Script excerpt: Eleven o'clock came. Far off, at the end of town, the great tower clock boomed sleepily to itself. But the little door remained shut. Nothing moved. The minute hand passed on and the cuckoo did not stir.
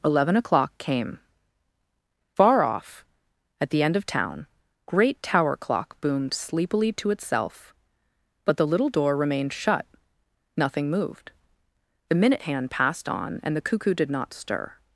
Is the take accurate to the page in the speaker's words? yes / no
no